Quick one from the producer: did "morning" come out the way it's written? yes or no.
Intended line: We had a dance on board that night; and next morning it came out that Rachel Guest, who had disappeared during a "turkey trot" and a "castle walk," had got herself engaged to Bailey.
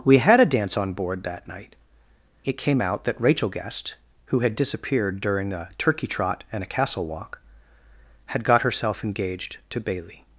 no